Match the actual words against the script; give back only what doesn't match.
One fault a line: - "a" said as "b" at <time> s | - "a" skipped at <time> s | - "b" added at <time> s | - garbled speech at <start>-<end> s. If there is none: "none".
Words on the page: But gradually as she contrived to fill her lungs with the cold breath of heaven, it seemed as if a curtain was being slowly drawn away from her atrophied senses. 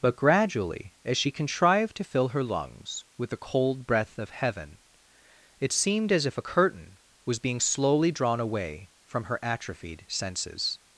none